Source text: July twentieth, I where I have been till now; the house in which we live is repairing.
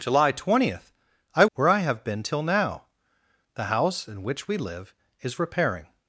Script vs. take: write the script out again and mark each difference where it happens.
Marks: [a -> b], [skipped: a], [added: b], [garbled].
July twentieth, I where I have been till now; the house in which we live is repairing.